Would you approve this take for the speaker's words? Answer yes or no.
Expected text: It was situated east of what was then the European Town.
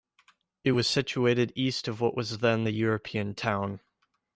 yes